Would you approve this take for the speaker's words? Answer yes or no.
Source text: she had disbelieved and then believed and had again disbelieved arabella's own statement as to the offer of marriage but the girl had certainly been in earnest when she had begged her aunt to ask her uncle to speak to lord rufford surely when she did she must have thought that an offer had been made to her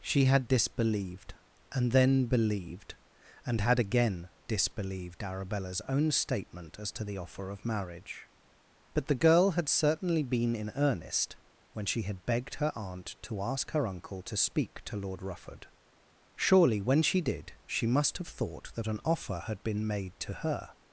yes